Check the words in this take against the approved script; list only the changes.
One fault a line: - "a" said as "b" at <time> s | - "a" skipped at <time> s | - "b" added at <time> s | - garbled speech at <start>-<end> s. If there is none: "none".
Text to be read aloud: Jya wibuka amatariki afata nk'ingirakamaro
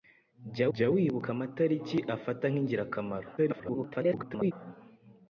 - "jya" added at 0.7 s
- garbled speech at 3.4-4.5 s